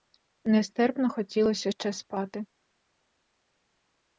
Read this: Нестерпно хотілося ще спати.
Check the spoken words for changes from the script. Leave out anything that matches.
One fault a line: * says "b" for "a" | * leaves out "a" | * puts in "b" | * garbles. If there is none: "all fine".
all fine